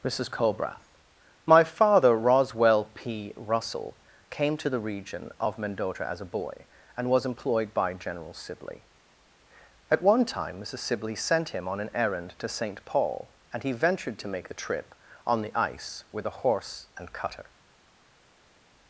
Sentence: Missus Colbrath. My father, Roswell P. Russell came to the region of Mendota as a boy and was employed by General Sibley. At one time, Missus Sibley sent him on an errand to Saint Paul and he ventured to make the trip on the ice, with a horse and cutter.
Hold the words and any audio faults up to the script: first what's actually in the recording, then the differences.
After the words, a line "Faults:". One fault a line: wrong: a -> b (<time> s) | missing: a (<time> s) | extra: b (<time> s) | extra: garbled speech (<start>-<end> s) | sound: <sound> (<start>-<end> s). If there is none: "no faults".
Missus Colbrath. My father, Roswell P. Russell came to the region of Mendota as a boy and was employed by General Sibley. At one time, Missus Sibley sent him on an errand to Saint Paul and he ventured to make the trip on the ice, with a horse and cutter.
Faults:
no faults